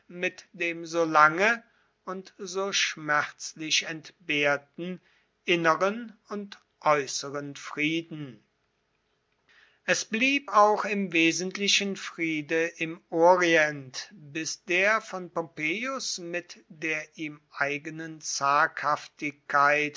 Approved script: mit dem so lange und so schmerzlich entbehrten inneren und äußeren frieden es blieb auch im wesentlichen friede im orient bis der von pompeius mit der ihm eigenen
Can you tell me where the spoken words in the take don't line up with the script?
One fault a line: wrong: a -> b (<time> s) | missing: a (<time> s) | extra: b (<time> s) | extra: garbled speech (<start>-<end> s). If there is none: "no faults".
no faults